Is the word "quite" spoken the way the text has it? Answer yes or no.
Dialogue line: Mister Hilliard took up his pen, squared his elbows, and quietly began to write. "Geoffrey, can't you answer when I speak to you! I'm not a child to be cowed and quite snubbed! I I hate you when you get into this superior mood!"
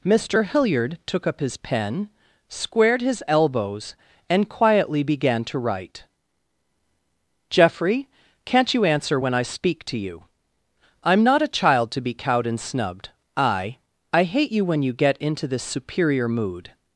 no